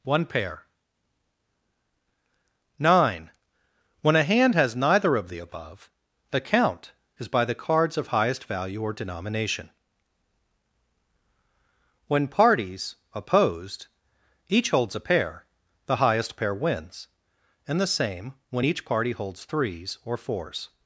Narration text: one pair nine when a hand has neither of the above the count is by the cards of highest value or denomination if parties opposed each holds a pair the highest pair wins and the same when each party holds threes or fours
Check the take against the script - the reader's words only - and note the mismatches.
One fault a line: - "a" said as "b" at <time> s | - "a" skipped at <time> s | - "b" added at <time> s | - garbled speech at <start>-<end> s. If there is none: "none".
- "if" said as "when" at 12.1 s